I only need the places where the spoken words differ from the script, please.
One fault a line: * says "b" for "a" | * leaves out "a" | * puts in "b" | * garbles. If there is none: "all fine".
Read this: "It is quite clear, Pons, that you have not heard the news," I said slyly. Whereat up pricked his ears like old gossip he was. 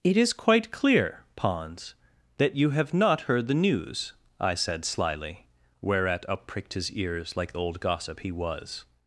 all fine